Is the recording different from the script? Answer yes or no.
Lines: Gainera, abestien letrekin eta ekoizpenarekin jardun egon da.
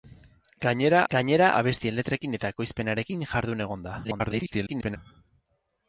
yes